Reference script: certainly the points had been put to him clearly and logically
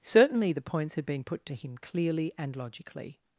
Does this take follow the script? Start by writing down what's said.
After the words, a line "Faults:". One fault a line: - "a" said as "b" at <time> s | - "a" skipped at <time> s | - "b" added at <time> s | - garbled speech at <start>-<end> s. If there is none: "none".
certainly the points had been put to him clearly and logically
Faults:
none